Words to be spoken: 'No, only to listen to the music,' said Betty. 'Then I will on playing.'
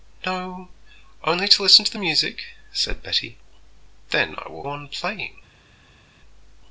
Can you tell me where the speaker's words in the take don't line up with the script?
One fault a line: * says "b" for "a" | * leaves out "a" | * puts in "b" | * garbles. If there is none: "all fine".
all fine